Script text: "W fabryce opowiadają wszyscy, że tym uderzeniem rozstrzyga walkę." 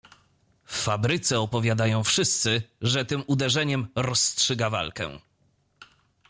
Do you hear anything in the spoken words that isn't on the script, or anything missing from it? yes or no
no